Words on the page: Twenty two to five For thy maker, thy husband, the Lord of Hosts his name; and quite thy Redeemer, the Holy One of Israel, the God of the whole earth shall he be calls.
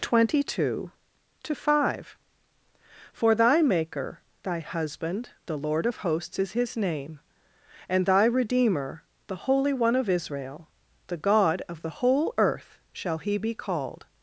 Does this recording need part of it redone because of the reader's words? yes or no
yes